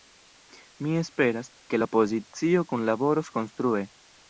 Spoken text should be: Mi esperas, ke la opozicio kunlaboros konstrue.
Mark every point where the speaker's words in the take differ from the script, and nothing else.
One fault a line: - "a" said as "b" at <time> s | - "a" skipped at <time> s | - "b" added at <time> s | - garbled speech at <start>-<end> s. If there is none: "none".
none